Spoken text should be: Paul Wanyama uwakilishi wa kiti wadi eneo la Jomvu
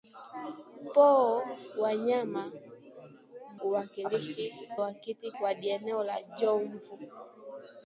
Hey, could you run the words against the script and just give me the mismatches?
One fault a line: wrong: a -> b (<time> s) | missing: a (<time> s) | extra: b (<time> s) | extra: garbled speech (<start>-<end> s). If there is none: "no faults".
no faults